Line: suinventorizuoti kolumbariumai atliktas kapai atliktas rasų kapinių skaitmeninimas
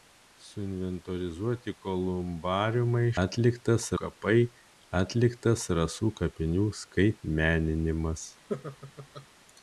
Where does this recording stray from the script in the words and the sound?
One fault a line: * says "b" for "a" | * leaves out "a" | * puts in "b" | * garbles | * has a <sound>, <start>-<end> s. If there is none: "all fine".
* has a laugh, 8.5-9.3 s